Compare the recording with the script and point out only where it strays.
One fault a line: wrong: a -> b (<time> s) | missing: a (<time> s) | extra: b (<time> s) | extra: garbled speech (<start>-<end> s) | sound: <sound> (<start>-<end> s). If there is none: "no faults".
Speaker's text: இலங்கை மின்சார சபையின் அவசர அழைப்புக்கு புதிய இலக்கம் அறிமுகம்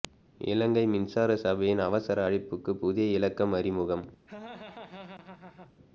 sound: laugh (4.3-5.7 s)